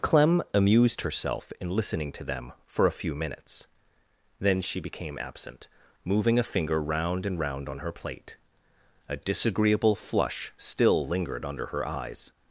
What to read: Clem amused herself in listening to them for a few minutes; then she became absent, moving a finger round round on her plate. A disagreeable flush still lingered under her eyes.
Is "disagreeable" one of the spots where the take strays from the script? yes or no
no